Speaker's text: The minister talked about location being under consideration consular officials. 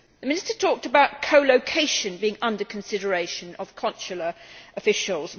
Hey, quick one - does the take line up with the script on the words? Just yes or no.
no